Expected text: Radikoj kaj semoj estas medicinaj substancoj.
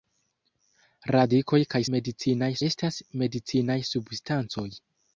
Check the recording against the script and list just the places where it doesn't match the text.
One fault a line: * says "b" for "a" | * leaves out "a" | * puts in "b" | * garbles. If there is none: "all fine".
* says "medicinaj" for "semoj"